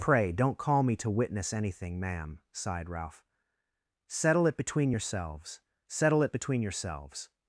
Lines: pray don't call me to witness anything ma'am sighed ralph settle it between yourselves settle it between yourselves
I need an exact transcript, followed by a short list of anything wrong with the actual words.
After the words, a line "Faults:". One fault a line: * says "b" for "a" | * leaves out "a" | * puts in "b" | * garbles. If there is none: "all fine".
pray don't call me to witness anything ma'am sighed ralph settle it between yourselves settle it between yourselves
Faults:
all fine